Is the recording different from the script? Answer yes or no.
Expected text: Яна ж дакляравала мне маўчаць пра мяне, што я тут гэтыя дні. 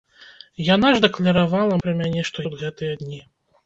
yes